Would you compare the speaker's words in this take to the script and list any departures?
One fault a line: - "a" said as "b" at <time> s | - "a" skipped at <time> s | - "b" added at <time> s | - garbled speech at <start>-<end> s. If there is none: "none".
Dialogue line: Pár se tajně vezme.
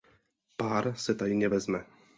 none